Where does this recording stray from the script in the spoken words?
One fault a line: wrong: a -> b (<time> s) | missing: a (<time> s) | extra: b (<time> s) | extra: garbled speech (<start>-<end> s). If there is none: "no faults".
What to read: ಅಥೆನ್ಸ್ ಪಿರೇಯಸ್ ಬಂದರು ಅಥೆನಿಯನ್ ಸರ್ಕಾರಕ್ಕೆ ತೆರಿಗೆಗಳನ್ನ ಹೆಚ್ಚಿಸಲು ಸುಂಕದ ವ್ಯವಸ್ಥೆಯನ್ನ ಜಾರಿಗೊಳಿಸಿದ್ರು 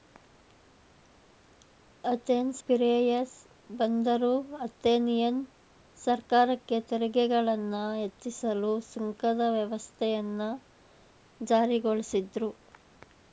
no faults